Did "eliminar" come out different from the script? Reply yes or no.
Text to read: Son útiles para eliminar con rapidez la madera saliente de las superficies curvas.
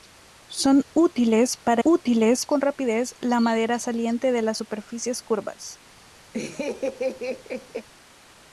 yes